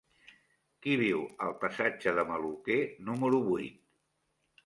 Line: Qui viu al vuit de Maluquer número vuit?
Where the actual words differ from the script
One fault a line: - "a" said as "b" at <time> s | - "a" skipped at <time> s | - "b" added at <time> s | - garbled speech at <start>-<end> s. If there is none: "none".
- "vuit" said as "passatge" at 1.6 s